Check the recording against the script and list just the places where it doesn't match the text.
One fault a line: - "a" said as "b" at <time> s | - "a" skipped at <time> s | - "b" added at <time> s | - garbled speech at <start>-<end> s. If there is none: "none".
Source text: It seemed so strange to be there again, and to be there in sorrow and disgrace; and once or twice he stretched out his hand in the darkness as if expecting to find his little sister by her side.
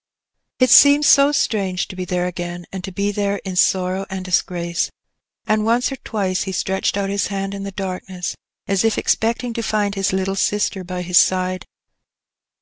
- "her" said as "his" at 11.0 s